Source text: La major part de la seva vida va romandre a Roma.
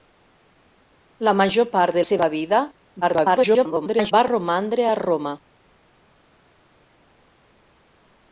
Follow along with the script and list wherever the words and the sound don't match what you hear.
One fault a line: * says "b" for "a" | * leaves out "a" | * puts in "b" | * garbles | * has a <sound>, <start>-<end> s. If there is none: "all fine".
* leaves out "la"
* garbles